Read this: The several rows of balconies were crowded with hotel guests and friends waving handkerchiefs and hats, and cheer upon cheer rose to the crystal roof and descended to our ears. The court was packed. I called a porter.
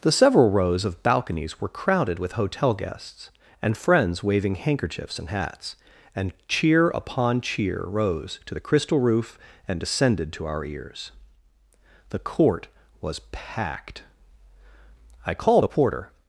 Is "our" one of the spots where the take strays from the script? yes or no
no